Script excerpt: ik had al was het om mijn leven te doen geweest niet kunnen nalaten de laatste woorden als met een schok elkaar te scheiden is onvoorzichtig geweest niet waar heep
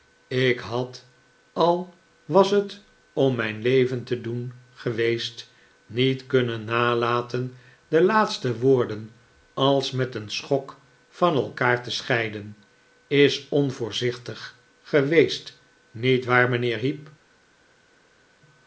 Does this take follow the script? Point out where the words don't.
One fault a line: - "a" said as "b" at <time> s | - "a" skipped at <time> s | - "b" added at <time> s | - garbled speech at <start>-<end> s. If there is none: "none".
- "van" added at 11.1 s
- "mijnheer" added at 16.5 s